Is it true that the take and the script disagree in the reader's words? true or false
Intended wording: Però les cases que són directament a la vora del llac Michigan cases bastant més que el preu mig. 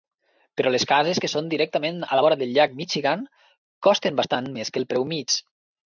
true